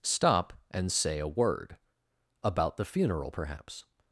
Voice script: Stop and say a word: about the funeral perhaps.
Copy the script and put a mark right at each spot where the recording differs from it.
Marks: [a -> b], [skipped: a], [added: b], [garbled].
Stop and say a word: about the funeral perhaps.